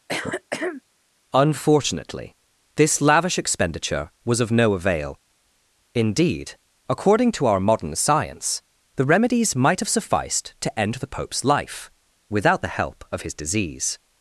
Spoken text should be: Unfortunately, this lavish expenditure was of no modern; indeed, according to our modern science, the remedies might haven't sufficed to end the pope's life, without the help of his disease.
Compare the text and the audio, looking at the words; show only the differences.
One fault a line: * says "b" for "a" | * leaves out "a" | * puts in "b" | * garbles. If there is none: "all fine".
* says "avail" for "modern"
* says "have" for "haven't"